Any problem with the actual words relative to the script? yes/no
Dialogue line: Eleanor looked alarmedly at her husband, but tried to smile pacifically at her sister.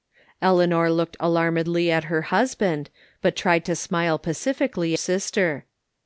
yes